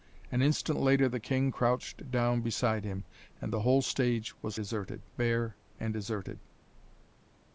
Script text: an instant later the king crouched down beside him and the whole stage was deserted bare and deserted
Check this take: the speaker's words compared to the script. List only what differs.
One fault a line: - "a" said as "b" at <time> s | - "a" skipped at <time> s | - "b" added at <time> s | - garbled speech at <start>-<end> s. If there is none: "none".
none